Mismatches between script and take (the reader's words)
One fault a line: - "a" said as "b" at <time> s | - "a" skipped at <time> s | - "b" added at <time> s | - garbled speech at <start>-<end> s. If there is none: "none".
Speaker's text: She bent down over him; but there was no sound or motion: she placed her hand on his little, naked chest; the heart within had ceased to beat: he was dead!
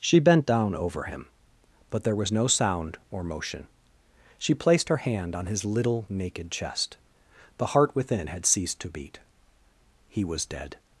none